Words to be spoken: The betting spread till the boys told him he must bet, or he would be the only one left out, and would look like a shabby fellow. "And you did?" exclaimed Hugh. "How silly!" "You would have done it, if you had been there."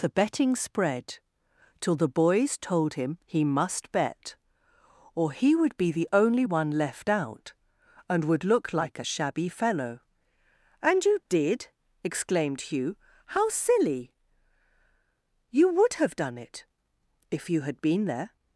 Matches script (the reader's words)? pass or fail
pass